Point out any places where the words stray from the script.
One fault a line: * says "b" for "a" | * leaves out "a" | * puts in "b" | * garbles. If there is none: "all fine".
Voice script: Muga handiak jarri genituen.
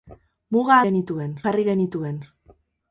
* says "genituen" for "handiak"